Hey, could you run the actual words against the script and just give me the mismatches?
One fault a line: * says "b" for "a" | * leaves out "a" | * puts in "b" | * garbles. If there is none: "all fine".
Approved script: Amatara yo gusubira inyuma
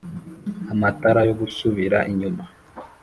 all fine